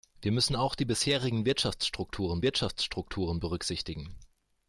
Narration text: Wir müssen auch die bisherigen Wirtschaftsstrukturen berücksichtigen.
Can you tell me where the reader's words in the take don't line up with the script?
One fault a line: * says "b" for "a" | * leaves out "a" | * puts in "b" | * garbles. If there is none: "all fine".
* puts in "Wirtschaftsstrukturen"